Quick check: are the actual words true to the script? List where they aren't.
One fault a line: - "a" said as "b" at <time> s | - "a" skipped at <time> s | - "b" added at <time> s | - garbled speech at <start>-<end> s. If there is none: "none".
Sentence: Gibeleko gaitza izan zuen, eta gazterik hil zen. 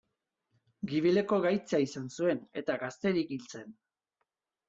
none